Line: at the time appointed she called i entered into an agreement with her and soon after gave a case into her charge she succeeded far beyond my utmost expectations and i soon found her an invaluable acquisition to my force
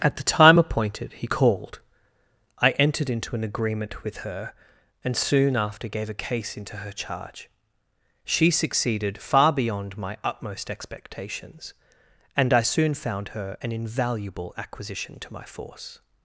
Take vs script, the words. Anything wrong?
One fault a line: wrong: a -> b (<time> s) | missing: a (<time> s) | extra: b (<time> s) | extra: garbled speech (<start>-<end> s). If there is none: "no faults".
wrong: she -> he (1.1 s)